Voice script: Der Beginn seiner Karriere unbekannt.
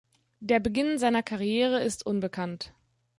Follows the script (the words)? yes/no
no